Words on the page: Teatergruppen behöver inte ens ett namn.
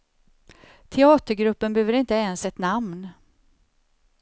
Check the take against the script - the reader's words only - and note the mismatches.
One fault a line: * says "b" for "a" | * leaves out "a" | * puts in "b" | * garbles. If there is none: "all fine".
all fine